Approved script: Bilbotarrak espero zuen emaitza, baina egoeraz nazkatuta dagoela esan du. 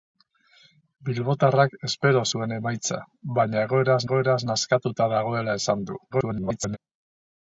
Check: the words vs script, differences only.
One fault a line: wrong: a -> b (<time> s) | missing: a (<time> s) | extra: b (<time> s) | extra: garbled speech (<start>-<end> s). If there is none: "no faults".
extra: egoeraz (4.1 s)
extra: garbled speech (6.1-6.8 s)